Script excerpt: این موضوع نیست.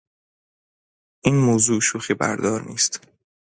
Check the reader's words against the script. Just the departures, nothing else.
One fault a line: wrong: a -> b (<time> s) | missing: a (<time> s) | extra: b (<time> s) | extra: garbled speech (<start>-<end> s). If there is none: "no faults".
extra: شوخیبردار (1.8 s)